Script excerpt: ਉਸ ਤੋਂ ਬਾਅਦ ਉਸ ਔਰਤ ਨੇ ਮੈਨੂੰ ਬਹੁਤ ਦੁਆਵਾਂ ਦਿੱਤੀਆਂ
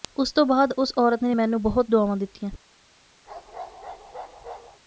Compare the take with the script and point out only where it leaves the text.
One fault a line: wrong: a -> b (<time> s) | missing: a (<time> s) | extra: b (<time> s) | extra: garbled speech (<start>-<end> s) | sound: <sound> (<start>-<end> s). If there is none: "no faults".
sound: bark (3.3-4.8 s)